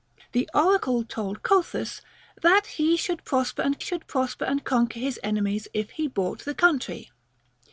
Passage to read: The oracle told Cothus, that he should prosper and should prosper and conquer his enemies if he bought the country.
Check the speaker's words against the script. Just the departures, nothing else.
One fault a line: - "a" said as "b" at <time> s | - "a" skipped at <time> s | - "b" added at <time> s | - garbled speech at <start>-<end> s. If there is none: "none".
none